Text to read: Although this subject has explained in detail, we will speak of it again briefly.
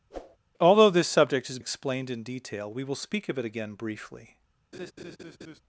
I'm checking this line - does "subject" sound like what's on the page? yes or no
yes